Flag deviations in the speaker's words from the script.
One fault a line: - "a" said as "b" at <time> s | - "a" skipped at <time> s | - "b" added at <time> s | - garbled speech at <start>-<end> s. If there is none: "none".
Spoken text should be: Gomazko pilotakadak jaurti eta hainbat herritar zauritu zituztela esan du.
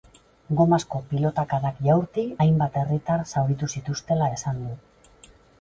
- "eta" skipped at 2.2 s